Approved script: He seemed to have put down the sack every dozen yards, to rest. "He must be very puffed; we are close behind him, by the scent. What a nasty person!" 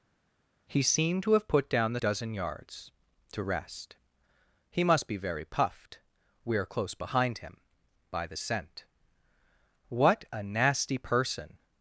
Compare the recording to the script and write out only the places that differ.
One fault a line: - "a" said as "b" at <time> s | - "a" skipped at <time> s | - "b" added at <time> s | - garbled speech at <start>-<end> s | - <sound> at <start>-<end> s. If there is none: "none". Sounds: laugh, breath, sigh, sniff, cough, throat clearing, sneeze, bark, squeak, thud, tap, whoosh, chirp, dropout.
- "sack every" skipped at 2.0 s